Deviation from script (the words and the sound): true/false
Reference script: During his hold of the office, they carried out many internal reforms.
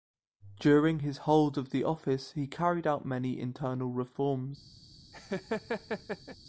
true